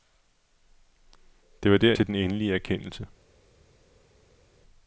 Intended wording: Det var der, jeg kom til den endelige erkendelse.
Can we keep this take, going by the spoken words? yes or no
no